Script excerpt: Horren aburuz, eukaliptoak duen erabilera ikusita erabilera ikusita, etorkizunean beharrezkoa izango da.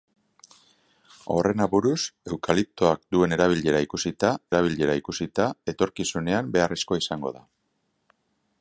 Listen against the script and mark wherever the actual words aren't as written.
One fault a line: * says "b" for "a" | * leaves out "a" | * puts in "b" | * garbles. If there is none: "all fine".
all fine